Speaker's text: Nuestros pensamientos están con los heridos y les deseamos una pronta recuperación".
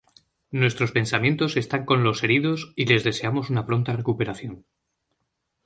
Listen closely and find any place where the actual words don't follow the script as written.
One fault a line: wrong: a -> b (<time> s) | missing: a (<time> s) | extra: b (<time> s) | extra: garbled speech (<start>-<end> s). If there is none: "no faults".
no faults